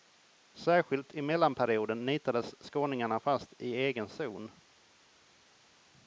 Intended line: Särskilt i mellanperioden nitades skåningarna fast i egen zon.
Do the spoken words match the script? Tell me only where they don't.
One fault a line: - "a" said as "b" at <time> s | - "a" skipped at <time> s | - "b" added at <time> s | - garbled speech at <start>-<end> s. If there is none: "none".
none